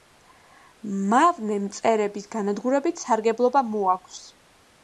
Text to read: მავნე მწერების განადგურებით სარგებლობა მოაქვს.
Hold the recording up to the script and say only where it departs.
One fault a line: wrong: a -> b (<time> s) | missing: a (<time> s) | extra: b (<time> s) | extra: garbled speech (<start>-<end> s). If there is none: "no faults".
no faults